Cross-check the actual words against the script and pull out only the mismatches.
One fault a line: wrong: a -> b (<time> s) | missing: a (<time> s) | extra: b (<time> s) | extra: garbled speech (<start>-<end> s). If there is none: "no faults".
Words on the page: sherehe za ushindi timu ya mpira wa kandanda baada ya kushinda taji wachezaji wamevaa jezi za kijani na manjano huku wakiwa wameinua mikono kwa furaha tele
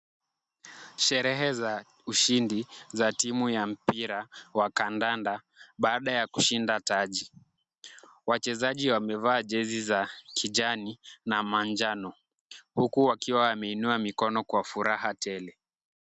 extra: za (2.9 s)